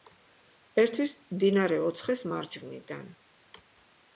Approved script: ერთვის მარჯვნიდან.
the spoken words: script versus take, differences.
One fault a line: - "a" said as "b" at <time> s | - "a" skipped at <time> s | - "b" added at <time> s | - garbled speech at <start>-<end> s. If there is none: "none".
- "მდინარე ოცხეს" added at 1.4 s